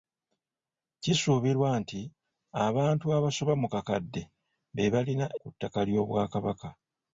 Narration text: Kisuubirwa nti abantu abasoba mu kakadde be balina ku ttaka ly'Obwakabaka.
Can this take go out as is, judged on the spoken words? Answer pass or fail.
pass